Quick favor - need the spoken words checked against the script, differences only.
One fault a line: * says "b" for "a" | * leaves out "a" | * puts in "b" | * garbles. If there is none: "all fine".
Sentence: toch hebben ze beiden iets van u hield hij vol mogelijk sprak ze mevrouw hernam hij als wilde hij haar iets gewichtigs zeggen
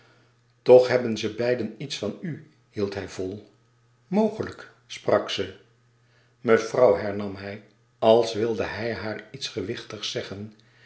all fine